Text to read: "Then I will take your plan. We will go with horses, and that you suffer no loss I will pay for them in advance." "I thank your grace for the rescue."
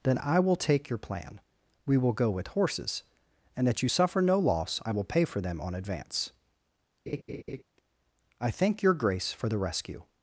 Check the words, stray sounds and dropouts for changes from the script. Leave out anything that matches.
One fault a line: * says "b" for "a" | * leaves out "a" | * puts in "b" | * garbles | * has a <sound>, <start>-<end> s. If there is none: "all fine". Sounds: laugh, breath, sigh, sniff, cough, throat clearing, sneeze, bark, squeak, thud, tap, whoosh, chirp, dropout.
* says "on" for "in"
* has a laugh, 7.1-7.6 s